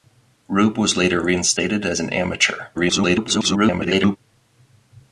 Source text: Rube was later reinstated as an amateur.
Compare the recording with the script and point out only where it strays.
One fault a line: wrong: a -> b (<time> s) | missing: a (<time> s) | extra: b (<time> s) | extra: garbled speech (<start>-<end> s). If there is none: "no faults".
extra: garbled speech (2.7-4.2 s)